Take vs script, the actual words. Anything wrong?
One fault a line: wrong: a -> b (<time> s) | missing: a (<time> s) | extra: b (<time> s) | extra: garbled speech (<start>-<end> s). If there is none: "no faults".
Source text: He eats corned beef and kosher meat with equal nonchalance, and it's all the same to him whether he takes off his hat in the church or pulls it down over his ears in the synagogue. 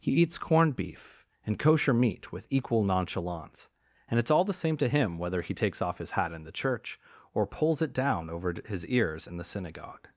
no faults